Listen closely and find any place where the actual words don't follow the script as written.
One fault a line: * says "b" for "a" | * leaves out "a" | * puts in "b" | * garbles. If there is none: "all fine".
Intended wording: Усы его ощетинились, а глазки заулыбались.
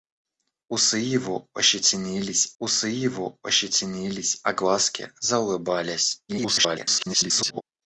* puts in "усы его ощетинились"
* garbles